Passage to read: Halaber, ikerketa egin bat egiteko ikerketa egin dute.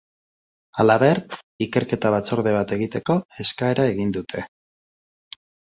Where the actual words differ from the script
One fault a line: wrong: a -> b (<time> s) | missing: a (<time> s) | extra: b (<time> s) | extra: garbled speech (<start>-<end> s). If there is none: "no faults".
wrong: egin -> batzorde (2.2 s)
wrong: ikerketa -> eskaera (3.5 s)